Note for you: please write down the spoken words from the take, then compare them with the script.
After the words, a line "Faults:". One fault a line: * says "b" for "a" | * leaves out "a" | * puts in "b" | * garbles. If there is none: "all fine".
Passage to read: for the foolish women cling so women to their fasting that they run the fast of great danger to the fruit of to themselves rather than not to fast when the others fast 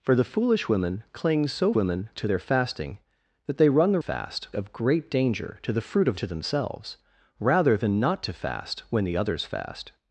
for the foolish women cling so women to their fasting that they run the fast of great danger to the fruit of to themselves rather than not to fast when the others fast
Faults:
all fine